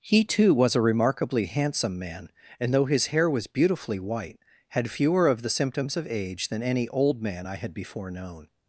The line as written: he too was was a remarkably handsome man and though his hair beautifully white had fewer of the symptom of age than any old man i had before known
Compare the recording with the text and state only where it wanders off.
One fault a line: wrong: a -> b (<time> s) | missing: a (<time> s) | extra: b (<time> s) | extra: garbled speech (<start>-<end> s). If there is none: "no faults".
missing: was (0.8 s)
extra: was (3.3 s)
wrong: symptom -> symptoms (5.5 s)